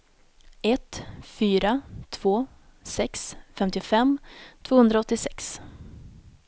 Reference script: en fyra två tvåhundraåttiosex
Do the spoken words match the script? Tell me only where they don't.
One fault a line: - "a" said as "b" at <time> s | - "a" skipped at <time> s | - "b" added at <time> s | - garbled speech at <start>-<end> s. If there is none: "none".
- "en" said as "ett" at 0.6 s
- "sex femtiofem" added at 2.8 s